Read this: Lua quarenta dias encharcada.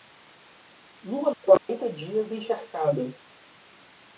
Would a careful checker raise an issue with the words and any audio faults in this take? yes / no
yes